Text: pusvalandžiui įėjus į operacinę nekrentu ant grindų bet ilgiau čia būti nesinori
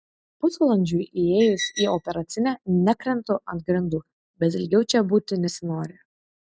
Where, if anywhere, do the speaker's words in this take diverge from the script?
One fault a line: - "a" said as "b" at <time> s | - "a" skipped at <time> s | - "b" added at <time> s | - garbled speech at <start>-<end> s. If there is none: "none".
none